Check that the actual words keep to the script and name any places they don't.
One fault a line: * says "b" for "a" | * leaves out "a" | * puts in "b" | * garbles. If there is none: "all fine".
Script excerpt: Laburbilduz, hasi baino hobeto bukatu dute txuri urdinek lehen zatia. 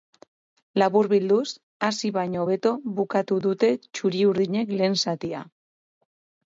all fine